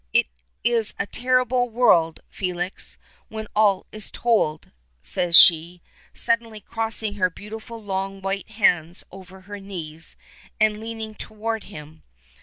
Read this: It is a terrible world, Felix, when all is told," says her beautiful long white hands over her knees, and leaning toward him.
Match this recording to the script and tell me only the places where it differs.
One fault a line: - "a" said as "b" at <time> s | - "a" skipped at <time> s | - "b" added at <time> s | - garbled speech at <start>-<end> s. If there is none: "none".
- "she suddenly crossing" added at 5.3 s